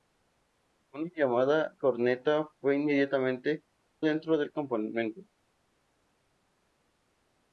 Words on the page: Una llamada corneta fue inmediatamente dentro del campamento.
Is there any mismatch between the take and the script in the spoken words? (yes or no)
no